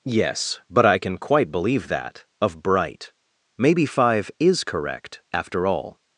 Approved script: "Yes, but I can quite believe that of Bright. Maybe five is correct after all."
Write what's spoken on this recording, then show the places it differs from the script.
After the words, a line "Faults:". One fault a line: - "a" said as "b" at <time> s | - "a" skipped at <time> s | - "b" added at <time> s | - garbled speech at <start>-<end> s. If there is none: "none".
"Yes, but I can quite believe that of Bright. Maybe five is correct after all."
Faults:
none